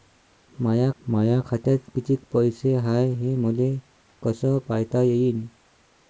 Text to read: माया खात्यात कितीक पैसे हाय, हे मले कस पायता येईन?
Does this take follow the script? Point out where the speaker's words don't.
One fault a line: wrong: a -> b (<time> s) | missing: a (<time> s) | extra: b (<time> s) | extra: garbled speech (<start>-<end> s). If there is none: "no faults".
extra: माया (1.0 s)